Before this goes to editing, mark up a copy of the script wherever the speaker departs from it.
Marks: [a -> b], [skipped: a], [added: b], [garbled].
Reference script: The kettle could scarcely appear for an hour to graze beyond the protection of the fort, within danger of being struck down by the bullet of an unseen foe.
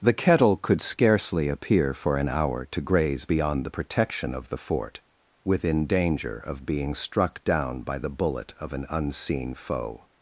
The kettle could scarcely appear for an hour to graze beyond the protection of the fort, within danger of being struck down by the bullet of an unseen foe.